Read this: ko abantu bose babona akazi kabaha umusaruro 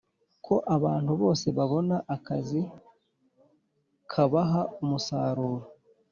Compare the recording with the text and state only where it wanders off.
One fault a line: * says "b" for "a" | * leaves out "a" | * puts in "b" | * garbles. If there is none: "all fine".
all fine